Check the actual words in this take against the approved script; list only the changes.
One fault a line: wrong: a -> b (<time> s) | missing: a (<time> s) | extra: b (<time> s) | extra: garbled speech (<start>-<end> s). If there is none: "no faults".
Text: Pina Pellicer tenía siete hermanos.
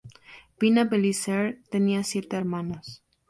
no faults